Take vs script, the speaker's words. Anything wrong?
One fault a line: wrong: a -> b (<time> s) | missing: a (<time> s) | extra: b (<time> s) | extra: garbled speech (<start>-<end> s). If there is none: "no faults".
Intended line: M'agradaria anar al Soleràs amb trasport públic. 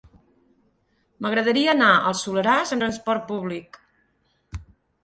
missing: amb (2.8 s)